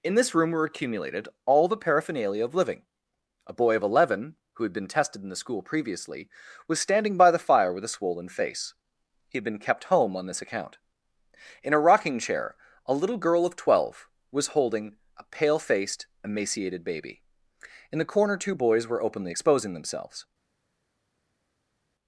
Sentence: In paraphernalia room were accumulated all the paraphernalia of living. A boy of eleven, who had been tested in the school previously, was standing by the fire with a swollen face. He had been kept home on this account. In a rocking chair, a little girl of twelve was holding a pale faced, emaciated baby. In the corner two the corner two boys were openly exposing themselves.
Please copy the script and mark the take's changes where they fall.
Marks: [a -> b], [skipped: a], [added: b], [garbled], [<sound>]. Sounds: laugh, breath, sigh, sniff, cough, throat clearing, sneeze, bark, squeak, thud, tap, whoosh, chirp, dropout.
In [paraphernalia -> this] room were accumulated all the paraphernalia of living. A boy of eleven, who had been tested in the school previously, was standing by the fire with a swollen face. He had been kept home on this account. In a rocking chair, a little girl of twelve was holding a pale faced, emaciated baby. In the corner two [skipped: the corner two] boys were openly exposing themselves.